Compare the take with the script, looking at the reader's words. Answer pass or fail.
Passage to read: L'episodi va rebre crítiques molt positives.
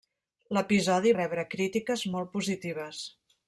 fail